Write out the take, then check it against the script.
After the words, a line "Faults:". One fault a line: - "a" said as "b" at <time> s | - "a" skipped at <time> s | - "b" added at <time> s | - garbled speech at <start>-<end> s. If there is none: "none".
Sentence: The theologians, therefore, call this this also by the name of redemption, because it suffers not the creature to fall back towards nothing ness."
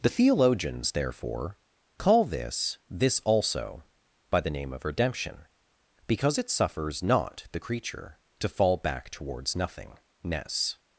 The theologians, therefore, call this this also by the name of redemption, because it suffers not the creature to fall back towards nothing ness."
Faults:
none